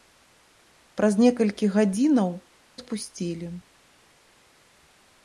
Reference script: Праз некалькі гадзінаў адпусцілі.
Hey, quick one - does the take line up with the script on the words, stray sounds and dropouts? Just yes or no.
yes